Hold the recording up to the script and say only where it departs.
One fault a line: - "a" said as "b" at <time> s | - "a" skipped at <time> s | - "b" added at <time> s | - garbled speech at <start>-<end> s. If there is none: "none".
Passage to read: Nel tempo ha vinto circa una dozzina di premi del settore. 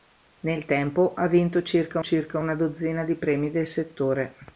- "circa" added at 2.0 s